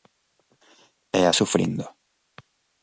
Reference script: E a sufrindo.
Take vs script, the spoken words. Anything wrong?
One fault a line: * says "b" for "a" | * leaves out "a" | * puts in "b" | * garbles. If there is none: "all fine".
all fine